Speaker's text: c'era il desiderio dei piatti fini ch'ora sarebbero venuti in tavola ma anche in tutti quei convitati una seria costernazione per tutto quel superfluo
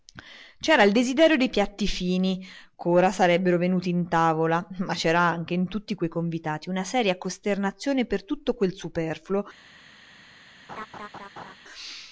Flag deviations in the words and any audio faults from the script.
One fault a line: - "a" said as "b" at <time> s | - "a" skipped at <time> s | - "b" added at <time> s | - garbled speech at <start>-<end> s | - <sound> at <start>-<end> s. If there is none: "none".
- "c'era" added at 4.9 s
- laugh at 10.7-11.5 s